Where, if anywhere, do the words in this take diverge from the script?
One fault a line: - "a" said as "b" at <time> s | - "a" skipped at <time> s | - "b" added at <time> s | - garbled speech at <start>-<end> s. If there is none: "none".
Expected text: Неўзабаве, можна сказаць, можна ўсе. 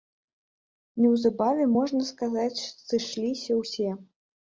- "можна" said as "сышліся" at 2.9 s